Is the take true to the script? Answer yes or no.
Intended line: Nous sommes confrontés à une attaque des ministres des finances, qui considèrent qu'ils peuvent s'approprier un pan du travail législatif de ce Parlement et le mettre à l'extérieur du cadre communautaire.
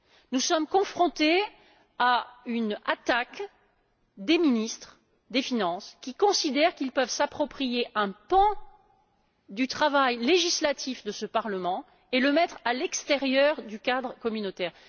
yes